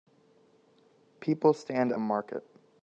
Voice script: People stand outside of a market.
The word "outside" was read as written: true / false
false